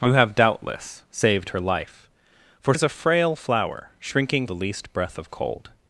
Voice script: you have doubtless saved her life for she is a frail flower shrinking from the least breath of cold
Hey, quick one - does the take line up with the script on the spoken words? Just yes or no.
no